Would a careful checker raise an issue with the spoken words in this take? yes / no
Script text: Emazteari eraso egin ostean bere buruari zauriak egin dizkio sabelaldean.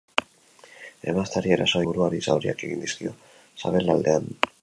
yes